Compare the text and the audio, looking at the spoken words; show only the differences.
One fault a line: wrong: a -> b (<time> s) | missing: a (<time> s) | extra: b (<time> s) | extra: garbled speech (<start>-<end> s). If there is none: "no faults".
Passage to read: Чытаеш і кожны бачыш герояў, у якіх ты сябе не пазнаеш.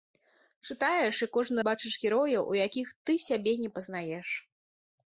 no faults